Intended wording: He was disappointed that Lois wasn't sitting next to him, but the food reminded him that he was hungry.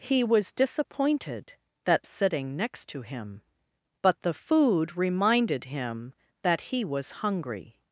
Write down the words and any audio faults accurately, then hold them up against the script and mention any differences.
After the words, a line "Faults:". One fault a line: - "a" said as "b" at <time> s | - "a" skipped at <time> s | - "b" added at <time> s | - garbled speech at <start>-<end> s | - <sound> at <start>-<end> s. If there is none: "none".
He was disappointed that Sitting next to him, but the food reminded him that he was hungry.
Faults:
- "Lois wasn't" skipped at 2.1 s